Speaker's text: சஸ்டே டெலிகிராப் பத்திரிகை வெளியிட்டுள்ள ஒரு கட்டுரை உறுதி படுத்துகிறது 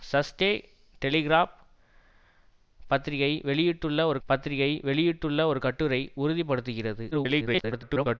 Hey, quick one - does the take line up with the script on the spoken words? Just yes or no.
no